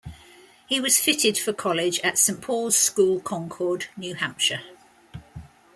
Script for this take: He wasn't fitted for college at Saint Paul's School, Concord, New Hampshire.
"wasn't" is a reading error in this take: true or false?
true